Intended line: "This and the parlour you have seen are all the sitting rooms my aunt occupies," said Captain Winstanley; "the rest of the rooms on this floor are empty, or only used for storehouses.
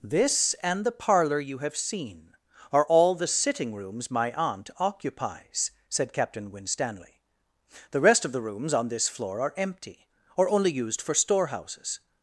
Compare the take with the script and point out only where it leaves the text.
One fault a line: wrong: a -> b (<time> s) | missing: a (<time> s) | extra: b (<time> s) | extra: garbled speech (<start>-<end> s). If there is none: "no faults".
no faults